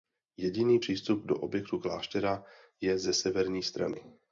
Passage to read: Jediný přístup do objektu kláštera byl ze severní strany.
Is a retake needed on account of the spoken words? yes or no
yes